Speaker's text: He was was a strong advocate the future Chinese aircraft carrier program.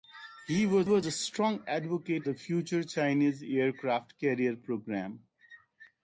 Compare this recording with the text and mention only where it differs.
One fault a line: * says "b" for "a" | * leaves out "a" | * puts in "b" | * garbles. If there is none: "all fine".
all fine